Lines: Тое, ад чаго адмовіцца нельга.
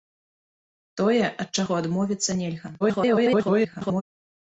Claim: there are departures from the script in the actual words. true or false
true